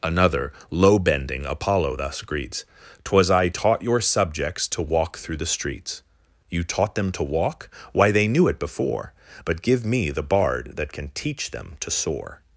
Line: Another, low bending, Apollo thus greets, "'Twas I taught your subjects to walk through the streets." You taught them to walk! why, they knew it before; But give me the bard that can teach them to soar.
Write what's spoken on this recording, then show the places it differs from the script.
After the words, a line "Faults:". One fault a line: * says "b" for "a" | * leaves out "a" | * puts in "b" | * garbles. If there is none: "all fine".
Another, low bending, Apollo thus greets, "'Twas I taught your subjects to walk through the streets." You taught them to walk! why, they knew it before; But give me the bard that can teach them to soar.
Faults:
all fine